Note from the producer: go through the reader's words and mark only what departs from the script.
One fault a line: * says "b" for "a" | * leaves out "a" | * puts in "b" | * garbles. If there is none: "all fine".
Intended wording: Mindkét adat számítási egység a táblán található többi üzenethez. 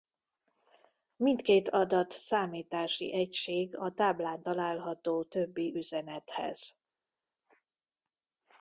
all fine